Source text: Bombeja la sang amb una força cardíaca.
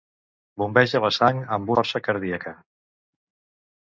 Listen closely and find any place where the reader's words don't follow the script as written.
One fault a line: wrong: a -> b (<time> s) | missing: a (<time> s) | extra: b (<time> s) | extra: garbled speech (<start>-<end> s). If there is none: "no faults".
missing: una (1.7 s)